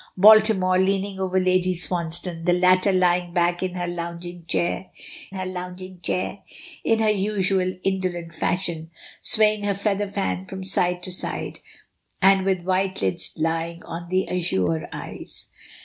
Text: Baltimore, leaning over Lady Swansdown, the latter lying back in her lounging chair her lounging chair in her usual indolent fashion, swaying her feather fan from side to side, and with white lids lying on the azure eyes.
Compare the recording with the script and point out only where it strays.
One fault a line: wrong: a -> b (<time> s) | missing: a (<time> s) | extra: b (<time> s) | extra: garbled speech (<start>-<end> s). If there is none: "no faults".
no faults